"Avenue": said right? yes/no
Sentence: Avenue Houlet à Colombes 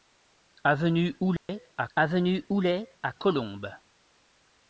yes